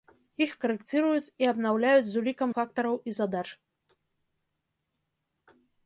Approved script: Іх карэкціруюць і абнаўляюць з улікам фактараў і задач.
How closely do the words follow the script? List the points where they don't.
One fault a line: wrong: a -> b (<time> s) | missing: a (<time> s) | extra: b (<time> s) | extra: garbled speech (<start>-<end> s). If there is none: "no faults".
no faults